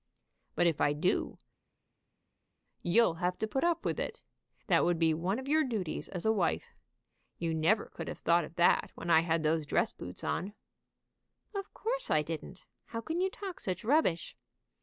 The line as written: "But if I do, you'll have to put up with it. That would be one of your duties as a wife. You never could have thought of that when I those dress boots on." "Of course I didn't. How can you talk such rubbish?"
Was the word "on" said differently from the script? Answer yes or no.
no